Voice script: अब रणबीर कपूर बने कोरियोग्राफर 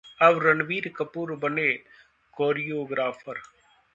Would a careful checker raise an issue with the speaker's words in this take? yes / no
no